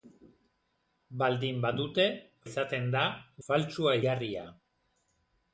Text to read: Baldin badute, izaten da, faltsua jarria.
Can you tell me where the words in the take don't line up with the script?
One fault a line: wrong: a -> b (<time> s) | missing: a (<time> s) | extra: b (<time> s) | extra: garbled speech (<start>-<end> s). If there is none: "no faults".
no faults